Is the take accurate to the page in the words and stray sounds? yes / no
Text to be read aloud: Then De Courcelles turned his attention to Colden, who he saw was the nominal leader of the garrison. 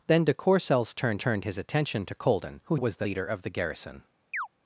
no